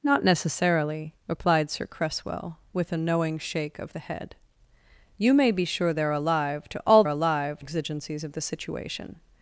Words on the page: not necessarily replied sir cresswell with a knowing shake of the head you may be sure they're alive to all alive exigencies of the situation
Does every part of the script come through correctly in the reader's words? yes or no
yes